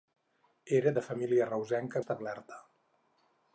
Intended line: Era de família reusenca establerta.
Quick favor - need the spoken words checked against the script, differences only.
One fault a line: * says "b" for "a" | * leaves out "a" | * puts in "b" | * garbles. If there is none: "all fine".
all fine